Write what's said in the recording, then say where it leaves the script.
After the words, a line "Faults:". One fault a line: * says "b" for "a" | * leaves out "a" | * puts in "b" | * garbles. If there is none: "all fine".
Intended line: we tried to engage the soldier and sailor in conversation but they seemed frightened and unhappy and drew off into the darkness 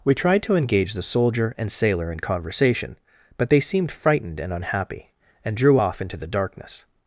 we tried to engage the soldier and sailor in conversation but they seemed frightened and unhappy and drew off into the darkness
Faults:
all fine